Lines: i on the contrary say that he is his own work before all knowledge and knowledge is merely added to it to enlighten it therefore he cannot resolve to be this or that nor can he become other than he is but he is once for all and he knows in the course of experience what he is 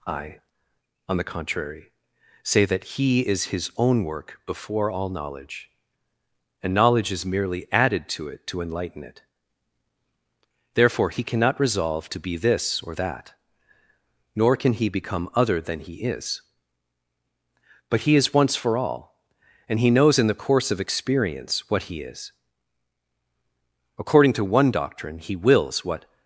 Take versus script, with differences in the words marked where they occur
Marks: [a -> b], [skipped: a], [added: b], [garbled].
i on the contrary say that he is his own work before all knowledge and knowledge is merely added to it to enlighten it therefore he cannot resolve to be this or that nor can he become other than he is but he is once for all and he knows in the course of experience what he is [added: according to one doctrine he wills what]